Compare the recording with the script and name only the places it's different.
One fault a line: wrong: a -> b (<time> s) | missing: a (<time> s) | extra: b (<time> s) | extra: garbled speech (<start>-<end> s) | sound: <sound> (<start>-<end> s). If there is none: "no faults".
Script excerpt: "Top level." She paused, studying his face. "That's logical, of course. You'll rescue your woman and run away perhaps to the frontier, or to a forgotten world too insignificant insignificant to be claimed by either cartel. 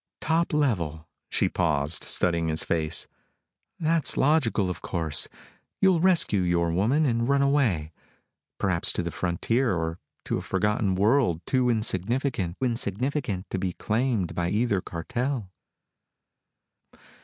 no faults